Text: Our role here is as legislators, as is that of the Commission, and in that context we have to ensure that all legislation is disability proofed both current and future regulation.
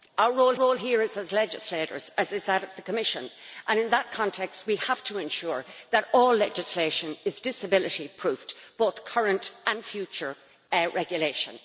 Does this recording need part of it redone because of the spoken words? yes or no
yes